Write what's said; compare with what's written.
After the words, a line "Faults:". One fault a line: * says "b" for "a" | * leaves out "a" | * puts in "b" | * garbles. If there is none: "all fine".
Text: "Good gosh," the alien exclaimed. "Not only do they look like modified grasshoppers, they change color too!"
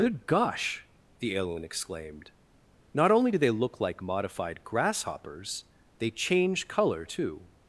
"Good gosh," the alien exclaimed. "Not only do they look like modified grasshoppers, they change color too!"
Faults:
all fine